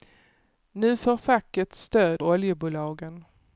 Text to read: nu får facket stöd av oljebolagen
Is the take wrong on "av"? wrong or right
wrong